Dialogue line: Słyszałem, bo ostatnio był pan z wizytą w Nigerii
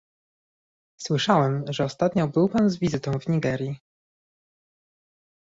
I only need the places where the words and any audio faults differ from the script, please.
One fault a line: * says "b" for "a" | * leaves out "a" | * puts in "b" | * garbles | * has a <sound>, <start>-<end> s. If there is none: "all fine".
* says "że" for "bo"